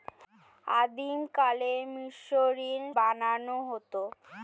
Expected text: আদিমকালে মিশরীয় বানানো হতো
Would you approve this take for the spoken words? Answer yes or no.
yes